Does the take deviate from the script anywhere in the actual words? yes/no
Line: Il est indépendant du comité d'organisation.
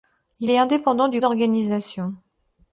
yes